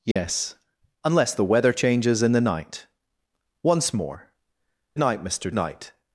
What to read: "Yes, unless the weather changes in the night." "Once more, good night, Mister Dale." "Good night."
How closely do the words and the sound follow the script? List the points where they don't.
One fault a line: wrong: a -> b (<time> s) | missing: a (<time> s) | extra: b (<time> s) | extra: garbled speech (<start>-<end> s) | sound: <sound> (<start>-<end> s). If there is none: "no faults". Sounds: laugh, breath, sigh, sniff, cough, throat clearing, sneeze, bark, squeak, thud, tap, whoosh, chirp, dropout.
sound: dropout (0.1-0.2 s)
missing: good (4.3 s)
missing: Dale Good (5.5 s)